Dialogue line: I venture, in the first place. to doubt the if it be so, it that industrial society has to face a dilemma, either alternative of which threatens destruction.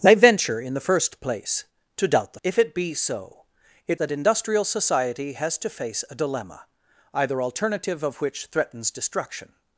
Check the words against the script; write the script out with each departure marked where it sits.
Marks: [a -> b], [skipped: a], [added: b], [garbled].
I venture, in the first place. to doubt the if it be so, it that industrial society has to face a dilemma, either alternative of which threatens destruction.